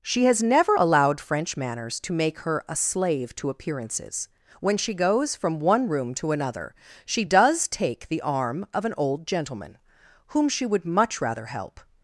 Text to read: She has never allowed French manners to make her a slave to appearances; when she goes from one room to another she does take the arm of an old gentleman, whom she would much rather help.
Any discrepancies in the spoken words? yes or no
no